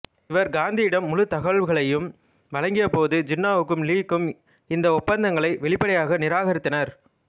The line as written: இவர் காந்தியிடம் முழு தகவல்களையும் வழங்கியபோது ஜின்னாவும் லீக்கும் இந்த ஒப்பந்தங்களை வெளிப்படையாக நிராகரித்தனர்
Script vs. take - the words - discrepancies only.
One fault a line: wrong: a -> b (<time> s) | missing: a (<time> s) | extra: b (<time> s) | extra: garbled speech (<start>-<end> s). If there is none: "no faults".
no faults